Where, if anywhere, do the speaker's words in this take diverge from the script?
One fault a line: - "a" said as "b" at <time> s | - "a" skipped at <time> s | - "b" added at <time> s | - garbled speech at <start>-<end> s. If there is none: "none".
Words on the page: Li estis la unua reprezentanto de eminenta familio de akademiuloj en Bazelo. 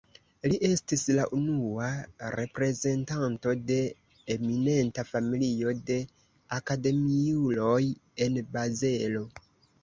none